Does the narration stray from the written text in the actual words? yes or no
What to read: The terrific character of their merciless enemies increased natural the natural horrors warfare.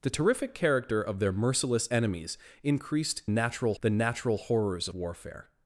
no